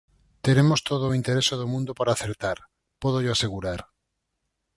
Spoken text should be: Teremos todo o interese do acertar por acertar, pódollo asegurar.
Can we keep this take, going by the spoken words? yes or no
no